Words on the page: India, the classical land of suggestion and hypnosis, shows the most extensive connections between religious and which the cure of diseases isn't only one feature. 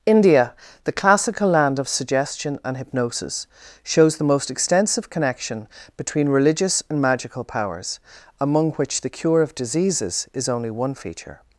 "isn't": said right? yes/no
no